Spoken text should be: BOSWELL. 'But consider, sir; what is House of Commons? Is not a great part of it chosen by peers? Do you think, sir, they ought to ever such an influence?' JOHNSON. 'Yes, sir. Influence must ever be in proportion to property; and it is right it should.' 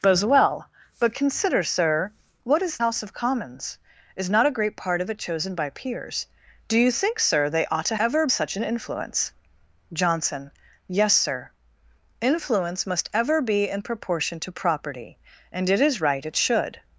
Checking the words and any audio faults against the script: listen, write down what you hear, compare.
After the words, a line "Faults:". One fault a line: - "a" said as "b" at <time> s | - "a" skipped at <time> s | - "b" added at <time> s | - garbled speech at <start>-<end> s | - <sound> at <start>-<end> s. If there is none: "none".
BOSWELL. 'But consider, sir; what is House of Commons? Is not a great part of it chosen by peers? Do you think, sir, they ought to ever such an influence?' JOHNSON. 'Yes, sir. Influence must ever be in proportion to property; and it is right it should.'
Faults:
none